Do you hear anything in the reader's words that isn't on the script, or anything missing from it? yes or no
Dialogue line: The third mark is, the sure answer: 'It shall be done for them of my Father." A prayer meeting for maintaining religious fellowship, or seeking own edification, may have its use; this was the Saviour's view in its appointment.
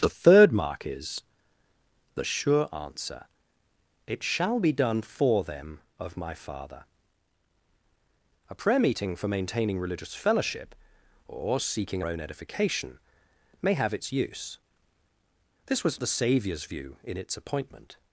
no